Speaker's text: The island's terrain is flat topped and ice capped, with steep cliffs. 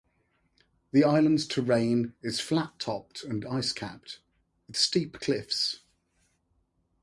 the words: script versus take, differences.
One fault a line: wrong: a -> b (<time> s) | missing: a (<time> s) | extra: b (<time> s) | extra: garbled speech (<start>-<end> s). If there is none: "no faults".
no faults